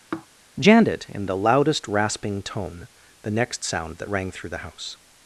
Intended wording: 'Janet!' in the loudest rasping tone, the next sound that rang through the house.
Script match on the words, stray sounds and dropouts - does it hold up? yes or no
no